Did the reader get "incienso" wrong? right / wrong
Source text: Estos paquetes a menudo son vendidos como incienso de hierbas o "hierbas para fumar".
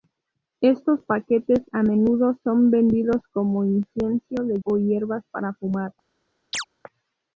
right